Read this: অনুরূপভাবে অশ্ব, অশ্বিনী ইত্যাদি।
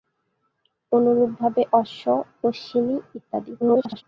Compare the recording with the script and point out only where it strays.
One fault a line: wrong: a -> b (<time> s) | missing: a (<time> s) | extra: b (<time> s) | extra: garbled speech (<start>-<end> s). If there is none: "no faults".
extra: garbled speech (3.6-4.0 s)